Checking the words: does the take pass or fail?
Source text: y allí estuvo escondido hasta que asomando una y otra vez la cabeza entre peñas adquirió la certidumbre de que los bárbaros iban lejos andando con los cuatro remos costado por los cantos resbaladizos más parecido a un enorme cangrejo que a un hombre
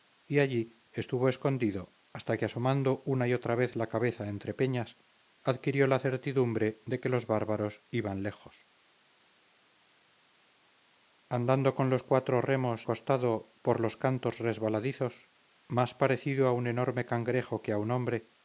pass